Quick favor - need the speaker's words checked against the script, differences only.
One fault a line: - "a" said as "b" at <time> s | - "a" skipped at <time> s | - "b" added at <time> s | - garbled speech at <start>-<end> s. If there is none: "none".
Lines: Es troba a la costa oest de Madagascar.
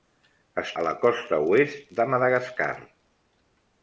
- "troba" skipped at 0.7 s